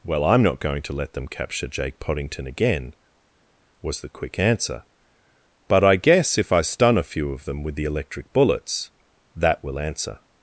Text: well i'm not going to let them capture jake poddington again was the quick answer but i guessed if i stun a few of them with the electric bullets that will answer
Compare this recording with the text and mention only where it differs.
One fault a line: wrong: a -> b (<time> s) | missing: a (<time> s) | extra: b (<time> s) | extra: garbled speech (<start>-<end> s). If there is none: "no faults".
wrong: guessed -> guess (5.9 s)